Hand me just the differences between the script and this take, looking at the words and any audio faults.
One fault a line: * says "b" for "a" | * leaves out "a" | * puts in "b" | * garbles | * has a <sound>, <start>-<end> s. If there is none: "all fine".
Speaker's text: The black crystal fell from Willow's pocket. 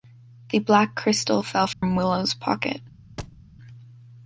* has a dropout, 1.7-1.8 s
* has a thud, 3.2-3.4 s